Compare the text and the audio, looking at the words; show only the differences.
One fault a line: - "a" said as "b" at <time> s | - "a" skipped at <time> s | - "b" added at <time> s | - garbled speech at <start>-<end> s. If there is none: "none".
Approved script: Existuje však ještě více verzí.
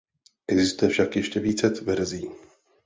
none